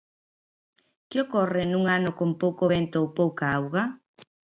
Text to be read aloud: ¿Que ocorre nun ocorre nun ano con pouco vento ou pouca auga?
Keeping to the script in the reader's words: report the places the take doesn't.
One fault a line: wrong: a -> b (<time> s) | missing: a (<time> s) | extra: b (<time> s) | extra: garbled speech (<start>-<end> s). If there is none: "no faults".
missing: ocorre nun (1.8 s)